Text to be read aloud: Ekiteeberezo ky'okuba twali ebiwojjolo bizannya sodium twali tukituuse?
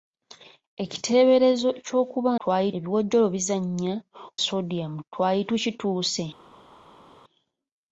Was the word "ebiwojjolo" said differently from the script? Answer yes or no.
no